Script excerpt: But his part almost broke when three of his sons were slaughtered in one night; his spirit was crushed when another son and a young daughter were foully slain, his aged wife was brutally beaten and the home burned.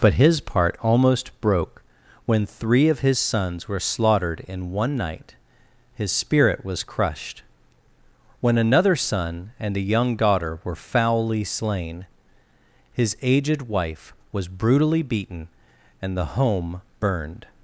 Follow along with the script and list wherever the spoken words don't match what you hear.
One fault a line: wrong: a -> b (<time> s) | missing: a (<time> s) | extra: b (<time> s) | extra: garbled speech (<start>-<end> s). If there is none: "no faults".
no faults